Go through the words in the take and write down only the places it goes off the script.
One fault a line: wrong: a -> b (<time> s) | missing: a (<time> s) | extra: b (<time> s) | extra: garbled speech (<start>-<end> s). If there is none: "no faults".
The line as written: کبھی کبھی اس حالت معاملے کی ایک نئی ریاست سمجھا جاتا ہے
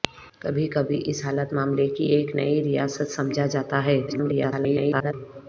extra: garbled speech (4.1-5.1 s)